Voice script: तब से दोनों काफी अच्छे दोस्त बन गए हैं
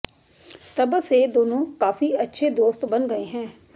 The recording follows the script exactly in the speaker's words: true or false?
true